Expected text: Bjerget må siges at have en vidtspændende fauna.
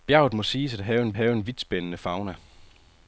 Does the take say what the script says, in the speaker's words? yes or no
no